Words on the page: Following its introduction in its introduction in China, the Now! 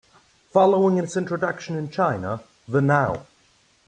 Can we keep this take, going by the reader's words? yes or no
no